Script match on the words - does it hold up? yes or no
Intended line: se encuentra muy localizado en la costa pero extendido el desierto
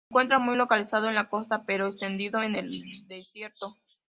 no